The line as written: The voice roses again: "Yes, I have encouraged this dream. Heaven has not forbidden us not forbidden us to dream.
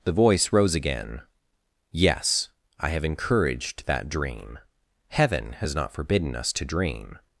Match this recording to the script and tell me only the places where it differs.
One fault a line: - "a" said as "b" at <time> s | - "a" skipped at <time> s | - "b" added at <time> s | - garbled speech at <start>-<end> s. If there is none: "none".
- "roses" said as "rose" at 0.5 s
- "this" said as "that" at 3.9 s
- "not forbidden us" skipped at 6.5 s